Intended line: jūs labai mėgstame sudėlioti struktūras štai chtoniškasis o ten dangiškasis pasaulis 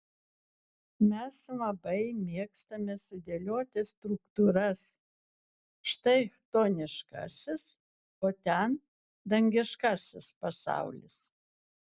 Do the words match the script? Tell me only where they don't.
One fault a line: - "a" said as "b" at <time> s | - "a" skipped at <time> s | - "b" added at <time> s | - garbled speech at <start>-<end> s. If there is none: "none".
- "jūs" said as "mes" at 1.1 s